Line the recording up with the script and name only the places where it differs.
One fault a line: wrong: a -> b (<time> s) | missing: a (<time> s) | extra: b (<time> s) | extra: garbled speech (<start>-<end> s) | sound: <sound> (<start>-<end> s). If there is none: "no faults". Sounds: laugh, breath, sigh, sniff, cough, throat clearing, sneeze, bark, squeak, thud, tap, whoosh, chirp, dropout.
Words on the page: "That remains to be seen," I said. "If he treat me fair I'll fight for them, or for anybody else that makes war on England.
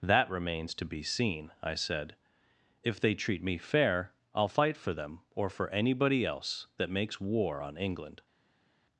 wrong: he -> they (3.0 s)